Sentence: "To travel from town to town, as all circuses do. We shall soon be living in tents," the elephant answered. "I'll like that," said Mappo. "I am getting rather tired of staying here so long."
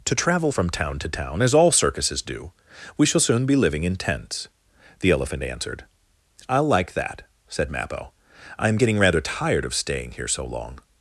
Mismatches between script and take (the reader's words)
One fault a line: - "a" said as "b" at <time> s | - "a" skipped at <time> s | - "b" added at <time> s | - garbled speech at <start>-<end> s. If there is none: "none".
none